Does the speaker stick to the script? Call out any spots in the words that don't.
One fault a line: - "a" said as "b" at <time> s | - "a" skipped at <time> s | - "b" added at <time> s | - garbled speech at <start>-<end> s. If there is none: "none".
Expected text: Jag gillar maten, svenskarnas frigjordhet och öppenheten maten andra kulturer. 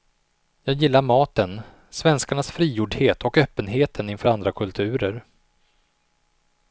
- "maten" said as "inför" at 4.1 s